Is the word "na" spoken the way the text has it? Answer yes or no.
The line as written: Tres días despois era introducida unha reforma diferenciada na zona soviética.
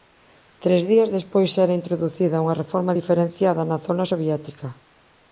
yes